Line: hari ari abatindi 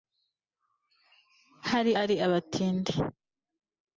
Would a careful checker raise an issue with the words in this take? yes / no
no